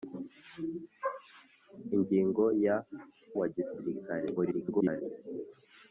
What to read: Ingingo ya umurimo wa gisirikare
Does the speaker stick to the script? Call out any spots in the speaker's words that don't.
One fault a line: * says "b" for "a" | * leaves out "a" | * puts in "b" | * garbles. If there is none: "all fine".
* leaves out "umurimo"
* garbles